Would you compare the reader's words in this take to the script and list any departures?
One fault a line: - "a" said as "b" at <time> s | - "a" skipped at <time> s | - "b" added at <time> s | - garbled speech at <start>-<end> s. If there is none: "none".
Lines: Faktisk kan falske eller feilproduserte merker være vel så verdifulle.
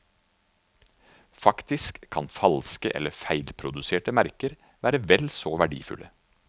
none